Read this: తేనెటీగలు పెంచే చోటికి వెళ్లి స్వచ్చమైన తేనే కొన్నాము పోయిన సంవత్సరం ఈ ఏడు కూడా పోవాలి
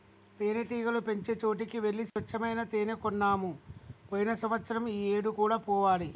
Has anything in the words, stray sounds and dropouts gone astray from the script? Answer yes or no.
yes